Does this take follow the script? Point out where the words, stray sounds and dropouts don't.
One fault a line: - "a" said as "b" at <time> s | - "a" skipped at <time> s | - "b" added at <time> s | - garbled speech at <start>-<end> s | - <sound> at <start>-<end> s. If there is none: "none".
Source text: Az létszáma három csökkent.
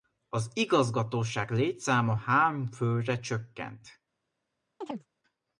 - "igazgatóság" added at 0.5 s
- "főre" added at 2.7 s
- chirp at 4.8-5.1 s